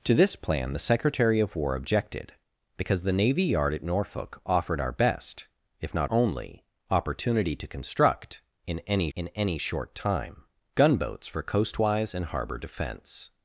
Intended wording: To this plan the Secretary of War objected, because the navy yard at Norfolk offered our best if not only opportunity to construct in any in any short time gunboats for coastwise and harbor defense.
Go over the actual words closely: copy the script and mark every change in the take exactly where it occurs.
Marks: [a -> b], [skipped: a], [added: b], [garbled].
To this plan the Secretary of War objected, because the navy yard at Norfolk offered our best if not only opportunity to construct in any in any short time gunboats for coastwise and harbor defense.